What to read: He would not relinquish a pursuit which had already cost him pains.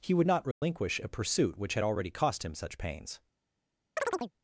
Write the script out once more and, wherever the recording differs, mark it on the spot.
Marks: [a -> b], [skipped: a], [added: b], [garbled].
He would not relinquish a pursuit which had already cost him [added: such] pains.